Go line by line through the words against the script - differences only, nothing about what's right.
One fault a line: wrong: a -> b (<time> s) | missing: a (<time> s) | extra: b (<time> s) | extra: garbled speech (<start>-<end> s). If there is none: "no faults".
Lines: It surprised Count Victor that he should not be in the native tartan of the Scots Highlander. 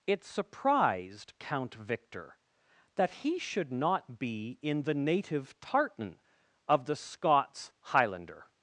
no faults